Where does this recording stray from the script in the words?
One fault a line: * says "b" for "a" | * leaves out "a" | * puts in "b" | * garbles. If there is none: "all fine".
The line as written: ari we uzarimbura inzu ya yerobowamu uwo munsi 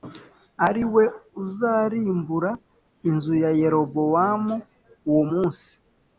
all fine